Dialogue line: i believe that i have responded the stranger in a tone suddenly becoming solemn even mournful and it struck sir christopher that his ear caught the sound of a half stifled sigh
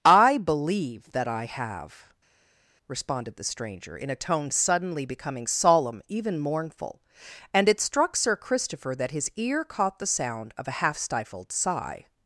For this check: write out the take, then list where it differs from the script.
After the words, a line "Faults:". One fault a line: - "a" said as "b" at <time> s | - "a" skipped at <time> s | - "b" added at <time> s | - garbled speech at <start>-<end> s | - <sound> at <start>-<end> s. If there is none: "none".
i believe that i have responded the stranger in a tone suddenly becoming solemn even mournful and it struck sir christopher that his ear caught the sound of a half stifled sigh
Faults:
none